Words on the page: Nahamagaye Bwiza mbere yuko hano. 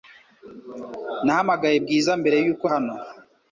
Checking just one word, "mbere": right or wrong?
right